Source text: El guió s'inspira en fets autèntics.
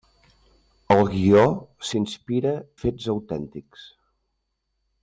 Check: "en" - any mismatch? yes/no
yes